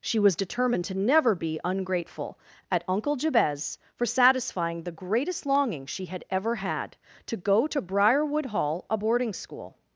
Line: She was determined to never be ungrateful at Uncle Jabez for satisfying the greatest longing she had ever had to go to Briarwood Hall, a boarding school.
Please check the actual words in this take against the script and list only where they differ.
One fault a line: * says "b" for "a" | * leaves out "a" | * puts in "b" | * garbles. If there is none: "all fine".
all fine